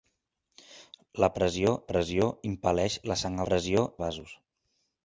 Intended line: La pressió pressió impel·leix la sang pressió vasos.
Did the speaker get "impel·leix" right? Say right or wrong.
right